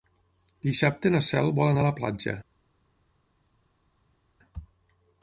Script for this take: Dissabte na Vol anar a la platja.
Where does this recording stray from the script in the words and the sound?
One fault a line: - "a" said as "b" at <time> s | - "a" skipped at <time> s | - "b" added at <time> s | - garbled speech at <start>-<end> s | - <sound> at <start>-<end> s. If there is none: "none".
- "Cel" added at 1.3 s